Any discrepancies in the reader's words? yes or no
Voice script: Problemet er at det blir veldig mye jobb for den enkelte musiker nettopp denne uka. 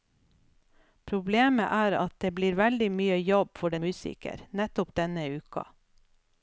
yes